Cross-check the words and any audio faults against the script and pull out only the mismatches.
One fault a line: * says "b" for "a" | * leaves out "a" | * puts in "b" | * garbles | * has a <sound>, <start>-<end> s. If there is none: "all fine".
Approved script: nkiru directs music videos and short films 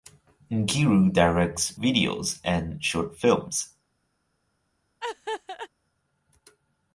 * leaves out "music"
* has a laugh, 5.0-5.7 s